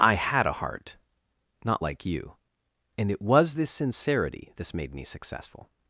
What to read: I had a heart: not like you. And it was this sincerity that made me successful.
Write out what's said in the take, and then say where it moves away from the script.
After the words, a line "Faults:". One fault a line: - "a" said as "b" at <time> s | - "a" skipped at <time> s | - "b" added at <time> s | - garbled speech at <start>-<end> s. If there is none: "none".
I had a heart: not like you. And it was this sincerity this made me successful.
Faults:
- "that" said as "this" at 4.6 s